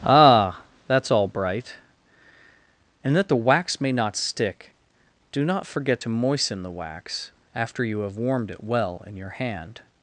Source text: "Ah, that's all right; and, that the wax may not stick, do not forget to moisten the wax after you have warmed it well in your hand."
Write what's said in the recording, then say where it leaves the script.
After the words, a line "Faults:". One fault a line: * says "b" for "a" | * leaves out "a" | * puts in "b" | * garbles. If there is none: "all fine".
"Ah, that's all bright; and, that the wax may not stick, do not forget to moisten the wax after you have warmed it well in your hand."
Faults:
* says "bright" for "right"